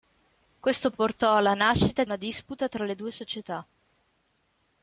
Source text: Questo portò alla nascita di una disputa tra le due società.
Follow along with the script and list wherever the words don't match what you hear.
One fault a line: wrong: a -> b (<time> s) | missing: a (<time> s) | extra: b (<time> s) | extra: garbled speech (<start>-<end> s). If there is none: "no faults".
missing: di (2.0 s)